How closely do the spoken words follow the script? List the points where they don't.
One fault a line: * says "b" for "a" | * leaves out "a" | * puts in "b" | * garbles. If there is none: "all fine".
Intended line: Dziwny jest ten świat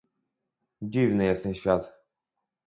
all fine